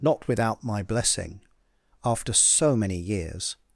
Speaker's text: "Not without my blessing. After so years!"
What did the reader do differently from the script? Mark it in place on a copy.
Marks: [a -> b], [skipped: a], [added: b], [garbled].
"Not without my blessing. After so [added: many] years!"